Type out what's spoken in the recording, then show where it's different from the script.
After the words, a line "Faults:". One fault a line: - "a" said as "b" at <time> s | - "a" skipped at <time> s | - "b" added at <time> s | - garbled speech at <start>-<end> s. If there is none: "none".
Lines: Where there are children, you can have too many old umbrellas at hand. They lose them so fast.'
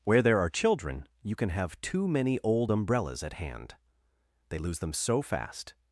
Where there are children, you can have too many old umbrellas at hand. They lose them so fast.'
Faults:
none